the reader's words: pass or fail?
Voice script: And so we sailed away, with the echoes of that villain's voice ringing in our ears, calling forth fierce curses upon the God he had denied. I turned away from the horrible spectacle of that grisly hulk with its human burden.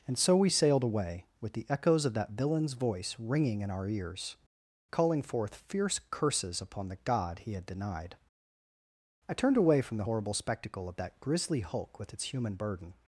pass